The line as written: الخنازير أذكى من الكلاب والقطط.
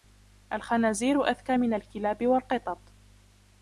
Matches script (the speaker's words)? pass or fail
pass